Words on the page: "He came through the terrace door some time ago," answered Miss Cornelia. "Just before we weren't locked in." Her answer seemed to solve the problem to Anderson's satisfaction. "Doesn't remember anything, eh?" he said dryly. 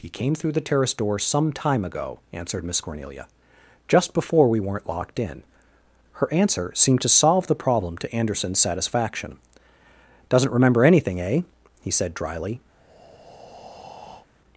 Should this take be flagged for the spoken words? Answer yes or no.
no